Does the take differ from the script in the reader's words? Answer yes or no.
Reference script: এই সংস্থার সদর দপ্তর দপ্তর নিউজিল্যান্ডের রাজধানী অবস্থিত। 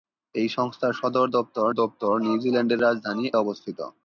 no